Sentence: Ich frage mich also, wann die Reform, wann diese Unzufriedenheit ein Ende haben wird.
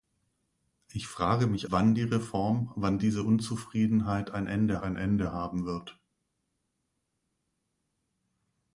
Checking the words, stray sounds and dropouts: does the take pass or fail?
fail